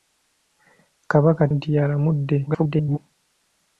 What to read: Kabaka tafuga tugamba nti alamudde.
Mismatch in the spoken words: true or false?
true